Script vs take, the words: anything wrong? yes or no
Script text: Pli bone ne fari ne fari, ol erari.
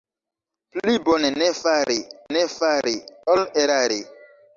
no